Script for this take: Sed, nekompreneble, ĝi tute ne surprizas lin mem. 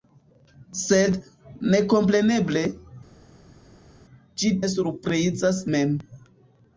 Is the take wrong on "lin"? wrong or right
wrong